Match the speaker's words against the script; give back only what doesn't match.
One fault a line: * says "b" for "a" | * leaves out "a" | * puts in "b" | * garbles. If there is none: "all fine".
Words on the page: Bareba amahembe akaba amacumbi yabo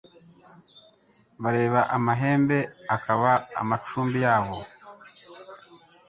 all fine